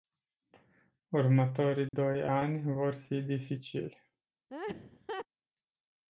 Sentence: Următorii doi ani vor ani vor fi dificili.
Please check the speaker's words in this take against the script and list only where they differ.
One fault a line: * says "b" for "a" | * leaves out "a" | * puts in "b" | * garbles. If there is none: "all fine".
* leaves out "ani vor"